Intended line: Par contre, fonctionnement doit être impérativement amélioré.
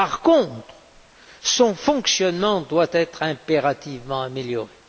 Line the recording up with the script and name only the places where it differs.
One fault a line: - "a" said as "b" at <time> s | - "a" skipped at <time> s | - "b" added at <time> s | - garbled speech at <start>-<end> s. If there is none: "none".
- "son" added at 1.4 s